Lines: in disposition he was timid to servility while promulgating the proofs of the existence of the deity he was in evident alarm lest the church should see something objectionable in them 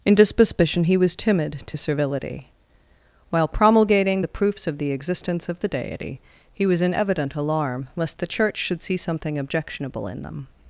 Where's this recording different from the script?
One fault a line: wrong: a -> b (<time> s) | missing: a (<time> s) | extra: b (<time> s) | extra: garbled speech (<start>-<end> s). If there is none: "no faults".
no faults